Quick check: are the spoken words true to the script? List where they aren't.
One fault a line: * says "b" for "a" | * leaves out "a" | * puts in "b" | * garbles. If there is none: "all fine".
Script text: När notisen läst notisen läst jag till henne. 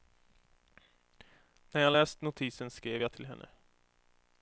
* says "jag" for "notisen"
* says "skrev" for "läst"